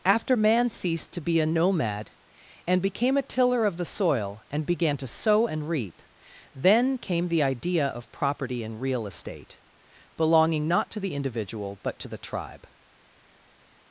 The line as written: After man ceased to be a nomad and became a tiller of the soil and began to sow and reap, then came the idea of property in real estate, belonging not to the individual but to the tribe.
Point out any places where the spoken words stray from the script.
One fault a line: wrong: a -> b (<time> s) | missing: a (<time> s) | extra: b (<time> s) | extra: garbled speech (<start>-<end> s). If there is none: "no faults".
no faults